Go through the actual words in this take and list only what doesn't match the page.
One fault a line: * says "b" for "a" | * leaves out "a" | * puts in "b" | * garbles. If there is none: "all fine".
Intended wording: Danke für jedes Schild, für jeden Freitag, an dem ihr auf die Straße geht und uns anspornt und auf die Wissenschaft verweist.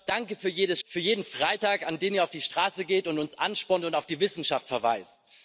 * leaves out "Schild"